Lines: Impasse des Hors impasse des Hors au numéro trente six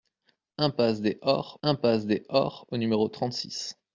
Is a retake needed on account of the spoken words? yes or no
no